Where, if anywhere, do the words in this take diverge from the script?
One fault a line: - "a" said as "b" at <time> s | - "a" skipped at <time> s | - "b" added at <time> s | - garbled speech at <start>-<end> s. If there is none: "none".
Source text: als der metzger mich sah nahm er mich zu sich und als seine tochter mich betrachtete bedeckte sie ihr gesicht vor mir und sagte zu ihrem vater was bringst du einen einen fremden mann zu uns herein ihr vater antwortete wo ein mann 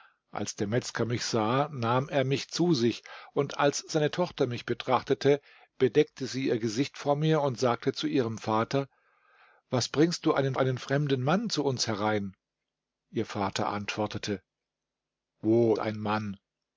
none